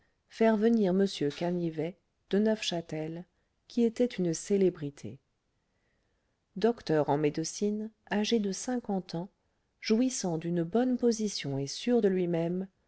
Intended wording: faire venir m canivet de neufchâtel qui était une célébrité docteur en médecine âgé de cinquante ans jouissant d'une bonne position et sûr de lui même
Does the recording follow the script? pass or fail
pass